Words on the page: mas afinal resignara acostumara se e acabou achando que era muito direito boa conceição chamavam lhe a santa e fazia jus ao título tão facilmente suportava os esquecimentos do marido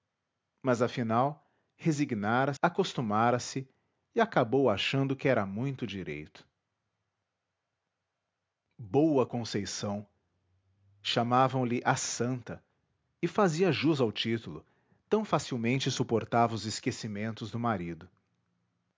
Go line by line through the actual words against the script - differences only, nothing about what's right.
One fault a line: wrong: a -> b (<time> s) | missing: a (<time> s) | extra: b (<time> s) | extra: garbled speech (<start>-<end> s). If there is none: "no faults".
no faults